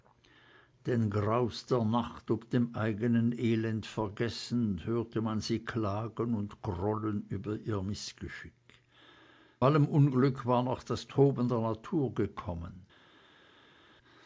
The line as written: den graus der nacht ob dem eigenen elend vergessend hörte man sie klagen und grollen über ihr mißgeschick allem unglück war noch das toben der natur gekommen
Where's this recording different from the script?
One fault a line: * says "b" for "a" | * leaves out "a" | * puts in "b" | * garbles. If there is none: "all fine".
all fine